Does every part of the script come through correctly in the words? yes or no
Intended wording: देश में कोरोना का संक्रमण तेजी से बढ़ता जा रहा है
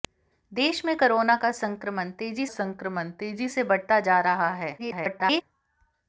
no